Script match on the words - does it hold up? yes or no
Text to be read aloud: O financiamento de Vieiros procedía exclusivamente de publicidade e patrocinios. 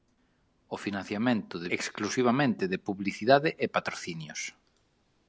no